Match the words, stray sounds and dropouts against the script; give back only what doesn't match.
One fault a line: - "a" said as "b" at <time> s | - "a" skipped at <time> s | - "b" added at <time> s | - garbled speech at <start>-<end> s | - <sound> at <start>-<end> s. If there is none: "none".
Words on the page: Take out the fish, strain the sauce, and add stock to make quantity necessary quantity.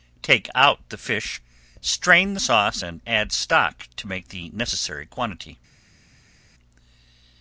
- "quantity" said as "the" at 4.3 s